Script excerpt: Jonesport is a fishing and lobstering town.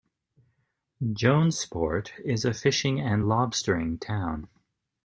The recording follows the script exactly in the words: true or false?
true